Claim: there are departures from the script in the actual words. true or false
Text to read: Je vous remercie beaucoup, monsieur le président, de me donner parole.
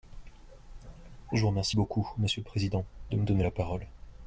true